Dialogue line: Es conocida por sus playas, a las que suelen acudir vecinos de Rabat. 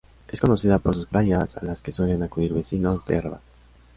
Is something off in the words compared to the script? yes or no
no